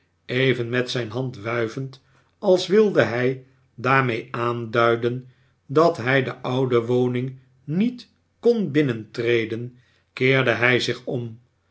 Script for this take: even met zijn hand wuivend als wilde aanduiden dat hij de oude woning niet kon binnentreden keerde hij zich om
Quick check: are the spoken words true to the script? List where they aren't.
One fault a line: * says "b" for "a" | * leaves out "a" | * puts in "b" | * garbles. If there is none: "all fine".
* puts in "hij daarmee"